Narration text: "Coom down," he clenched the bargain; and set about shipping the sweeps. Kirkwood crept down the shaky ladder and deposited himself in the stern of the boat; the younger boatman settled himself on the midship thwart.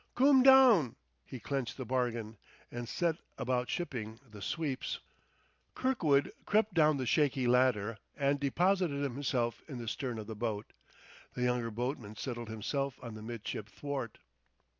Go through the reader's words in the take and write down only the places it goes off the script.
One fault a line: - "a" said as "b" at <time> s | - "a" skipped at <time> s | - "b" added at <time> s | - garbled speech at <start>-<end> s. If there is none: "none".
none